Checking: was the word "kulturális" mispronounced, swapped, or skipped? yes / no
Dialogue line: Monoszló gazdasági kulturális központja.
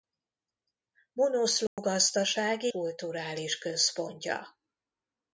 no